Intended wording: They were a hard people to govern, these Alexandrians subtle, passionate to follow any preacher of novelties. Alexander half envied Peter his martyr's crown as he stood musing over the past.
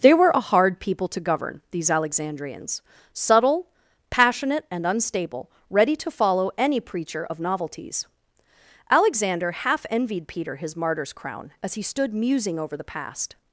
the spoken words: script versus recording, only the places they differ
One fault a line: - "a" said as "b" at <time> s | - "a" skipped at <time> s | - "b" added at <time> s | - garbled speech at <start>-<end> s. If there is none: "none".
- "and unstable ready" added at 4.7 s